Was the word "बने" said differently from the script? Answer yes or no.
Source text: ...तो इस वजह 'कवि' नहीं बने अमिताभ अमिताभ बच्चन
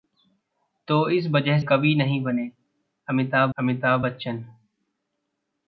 no